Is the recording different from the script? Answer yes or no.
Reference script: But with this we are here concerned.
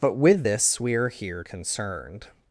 no